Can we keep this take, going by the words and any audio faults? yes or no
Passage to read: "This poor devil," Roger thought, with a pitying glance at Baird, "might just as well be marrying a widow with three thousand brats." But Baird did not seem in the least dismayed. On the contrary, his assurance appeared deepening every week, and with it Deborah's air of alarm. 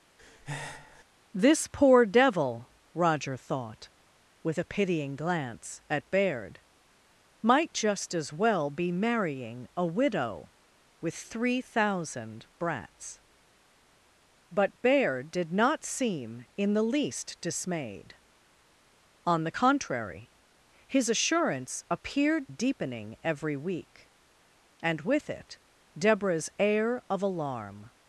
no